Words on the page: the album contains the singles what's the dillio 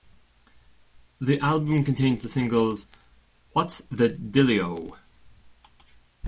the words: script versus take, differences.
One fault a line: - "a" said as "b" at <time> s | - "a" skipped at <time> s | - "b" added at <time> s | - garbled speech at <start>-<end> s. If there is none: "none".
none